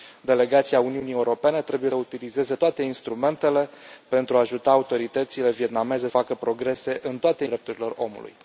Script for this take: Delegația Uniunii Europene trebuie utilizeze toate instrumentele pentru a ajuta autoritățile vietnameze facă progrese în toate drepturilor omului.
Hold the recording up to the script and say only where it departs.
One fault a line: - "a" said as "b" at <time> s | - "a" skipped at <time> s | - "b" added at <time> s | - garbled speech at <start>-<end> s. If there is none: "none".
none